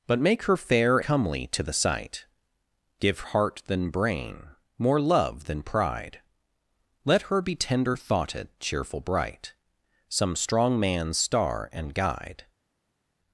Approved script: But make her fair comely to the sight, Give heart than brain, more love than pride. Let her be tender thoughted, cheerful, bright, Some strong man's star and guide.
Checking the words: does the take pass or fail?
pass